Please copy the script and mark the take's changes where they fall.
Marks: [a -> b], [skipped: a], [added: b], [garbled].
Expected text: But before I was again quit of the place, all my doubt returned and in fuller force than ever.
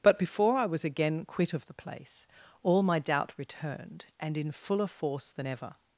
But before I was again quit of the place, all my doubt returned and in fuller force than ever.